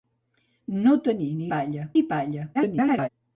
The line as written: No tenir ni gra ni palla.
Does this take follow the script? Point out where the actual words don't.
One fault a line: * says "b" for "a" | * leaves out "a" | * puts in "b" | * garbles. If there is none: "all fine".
* says "palla" for "gra"
* garbles